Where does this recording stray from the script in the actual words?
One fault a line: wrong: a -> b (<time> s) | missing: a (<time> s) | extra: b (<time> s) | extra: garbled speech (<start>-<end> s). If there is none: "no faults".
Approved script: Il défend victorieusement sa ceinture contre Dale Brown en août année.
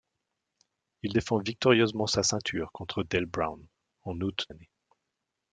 no faults